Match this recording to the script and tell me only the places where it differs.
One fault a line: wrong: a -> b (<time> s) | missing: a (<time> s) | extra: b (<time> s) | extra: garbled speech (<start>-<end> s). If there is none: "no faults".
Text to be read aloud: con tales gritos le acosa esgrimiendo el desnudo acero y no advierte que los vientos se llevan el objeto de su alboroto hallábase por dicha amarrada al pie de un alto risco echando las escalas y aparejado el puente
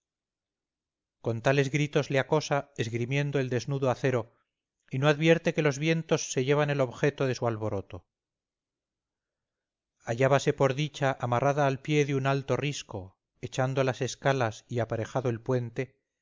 no faults